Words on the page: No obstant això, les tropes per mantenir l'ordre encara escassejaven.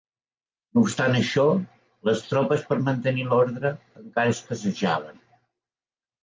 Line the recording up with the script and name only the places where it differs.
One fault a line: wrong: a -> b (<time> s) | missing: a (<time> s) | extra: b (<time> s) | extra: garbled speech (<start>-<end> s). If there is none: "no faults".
no faults